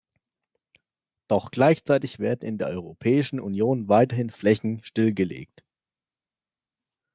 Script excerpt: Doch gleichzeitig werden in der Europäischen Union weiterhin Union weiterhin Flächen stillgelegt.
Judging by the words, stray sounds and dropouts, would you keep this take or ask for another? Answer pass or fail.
fail